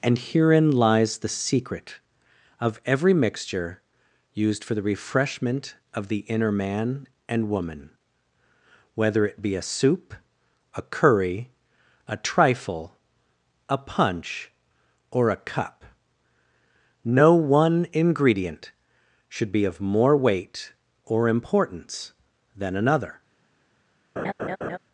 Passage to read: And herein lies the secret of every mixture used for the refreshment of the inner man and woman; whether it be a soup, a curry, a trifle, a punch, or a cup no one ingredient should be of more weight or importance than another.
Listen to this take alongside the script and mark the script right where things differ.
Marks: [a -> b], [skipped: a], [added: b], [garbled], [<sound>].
And herein lies the secret of every mixture used for the refreshment of the inner man and woman; whether it be a soup, a curry, a trifle, a punch, or a cup no one ingredient should be of more weight or importance than another. [laugh]